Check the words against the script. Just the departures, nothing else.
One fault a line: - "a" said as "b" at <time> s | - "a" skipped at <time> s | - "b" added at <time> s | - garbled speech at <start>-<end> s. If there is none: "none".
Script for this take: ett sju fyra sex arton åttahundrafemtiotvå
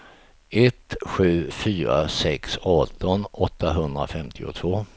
none